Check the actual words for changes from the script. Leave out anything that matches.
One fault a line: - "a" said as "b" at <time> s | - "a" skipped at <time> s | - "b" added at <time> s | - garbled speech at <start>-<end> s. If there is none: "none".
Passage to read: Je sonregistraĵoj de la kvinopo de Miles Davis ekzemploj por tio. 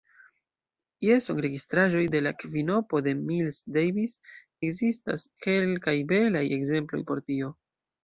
- "ekzistas kelkaj belaj" added at 4.7 s